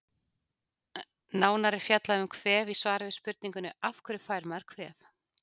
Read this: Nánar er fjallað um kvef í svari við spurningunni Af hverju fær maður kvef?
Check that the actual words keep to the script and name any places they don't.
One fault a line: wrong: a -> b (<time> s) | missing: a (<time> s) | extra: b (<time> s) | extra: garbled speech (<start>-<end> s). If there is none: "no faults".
no faults